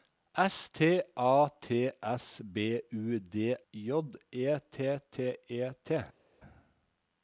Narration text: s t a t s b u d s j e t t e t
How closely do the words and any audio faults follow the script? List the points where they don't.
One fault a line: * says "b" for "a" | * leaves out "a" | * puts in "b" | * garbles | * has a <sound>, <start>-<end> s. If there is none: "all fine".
* leaves out "s"